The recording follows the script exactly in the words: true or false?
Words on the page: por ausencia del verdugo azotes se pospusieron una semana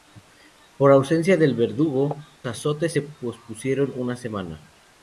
true